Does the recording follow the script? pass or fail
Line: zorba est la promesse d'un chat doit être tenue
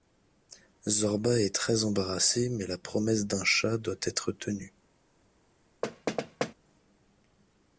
fail